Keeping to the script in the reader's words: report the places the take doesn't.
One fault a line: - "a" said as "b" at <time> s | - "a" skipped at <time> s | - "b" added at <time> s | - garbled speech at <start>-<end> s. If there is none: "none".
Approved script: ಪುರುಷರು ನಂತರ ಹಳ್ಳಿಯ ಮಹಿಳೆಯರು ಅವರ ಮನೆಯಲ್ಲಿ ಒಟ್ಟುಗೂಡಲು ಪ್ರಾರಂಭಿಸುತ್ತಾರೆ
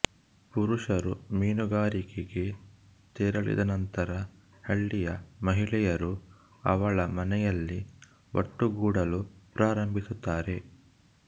- "ಮೀನುಗಾರಿಕೆಗೆ ತೆರಳಿದ" added at 1.3 s
- "ಅವರ" said as "ಅವಳ" at 6.7 s